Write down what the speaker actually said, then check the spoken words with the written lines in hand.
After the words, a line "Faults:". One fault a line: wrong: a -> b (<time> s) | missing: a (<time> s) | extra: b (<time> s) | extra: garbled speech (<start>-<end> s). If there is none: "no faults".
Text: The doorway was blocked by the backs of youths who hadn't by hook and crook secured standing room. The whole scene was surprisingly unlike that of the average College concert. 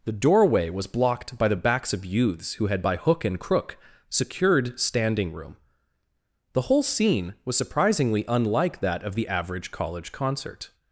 The doorway was blocked by the backs of youths who had by hook and crook secured standing room. The whole scene was surprisingly unlike that of the average College concert.
Faults:
wrong: hadn't -> had (2.7 s)